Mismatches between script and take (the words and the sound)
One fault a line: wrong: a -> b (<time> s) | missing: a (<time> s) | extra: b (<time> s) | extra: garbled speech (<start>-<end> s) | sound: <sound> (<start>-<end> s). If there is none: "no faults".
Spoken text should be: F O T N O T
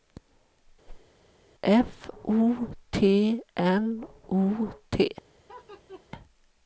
sound: whoosh (0.9-1.1 s)
sound: laugh (5.5-6.0 s)